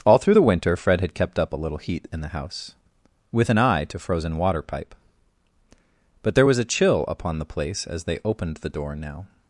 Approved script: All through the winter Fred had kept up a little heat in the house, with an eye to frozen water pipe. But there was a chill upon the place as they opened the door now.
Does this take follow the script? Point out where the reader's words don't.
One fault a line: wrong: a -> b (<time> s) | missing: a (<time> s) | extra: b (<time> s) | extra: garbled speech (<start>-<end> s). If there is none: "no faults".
no faults